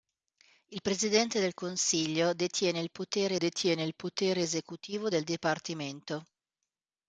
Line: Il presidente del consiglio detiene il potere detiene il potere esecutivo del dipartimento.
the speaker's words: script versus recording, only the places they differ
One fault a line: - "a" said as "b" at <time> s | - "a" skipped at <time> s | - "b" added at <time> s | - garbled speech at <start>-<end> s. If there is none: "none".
none